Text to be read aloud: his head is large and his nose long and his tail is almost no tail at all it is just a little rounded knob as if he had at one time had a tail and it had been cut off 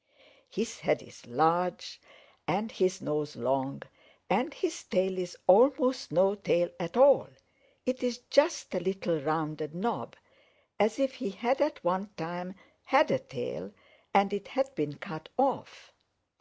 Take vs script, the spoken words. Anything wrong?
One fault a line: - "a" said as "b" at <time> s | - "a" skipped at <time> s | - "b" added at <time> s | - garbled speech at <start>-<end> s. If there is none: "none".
none